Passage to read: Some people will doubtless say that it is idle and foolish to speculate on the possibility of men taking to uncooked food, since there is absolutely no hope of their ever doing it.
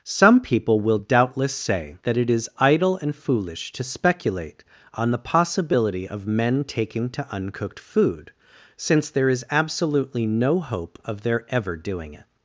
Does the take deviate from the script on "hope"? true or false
false